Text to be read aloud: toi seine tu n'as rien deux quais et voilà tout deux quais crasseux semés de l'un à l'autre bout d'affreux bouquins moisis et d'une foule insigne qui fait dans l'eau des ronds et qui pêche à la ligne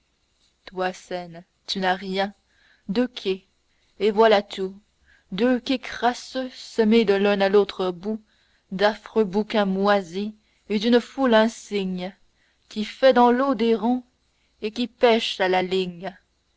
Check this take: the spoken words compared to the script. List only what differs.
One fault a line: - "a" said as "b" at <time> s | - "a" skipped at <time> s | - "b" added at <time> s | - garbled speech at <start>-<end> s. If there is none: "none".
none